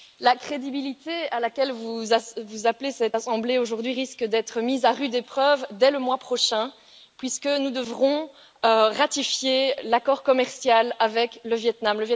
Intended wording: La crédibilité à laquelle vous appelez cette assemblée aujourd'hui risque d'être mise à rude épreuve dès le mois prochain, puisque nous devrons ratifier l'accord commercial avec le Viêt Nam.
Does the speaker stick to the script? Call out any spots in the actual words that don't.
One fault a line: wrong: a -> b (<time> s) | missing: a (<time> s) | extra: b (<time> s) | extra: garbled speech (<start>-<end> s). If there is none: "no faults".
no faults